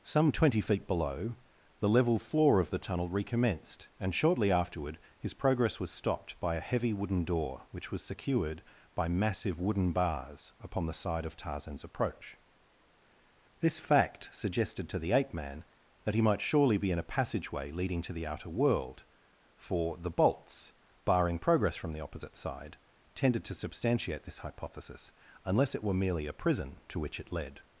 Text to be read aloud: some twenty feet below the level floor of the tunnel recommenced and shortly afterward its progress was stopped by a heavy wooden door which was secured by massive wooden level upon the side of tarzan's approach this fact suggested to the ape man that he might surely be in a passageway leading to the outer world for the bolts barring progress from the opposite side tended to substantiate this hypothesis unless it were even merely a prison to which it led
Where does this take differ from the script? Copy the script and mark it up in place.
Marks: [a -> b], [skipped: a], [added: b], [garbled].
some twenty feet below the level floor of the tunnel recommenced and shortly afterward [its -> his] progress was stopped by a heavy wooden door which was secured by massive wooden [level -> bars] upon the side of tarzan's approach this fact suggested to the ape man that he might surely be in a passageway leading to the outer world for the bolts barring progress from the opposite side tended to substantiate this hypothesis unless it were [skipped: even] merely a prison to which it led